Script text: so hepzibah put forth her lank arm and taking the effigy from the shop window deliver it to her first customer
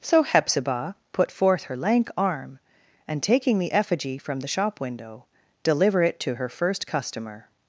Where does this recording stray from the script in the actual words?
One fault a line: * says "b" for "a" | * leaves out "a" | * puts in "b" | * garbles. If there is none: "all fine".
all fine